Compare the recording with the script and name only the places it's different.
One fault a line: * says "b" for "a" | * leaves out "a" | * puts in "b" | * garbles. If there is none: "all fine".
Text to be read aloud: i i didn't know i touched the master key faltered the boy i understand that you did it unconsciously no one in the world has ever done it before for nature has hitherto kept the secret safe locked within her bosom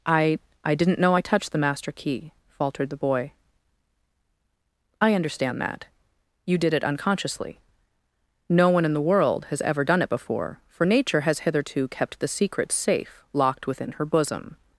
all fine